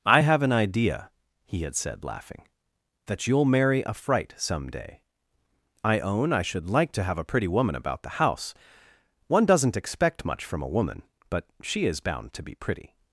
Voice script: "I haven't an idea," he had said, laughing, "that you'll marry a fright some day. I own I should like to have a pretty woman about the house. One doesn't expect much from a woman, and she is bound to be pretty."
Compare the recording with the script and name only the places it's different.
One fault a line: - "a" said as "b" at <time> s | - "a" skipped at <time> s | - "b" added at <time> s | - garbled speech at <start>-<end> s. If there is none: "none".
- "haven't" said as "have" at 0.2 s
- "and" said as "but" at 11.3 s